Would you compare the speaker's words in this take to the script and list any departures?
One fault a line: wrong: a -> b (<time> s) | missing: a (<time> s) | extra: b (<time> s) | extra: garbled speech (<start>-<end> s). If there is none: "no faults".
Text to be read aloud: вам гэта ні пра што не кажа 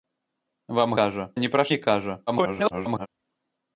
wrong: гэта -> кажа (1.0 s)
missing: што (1.6 s)
extra: garbled speech (2.3-3.1 s)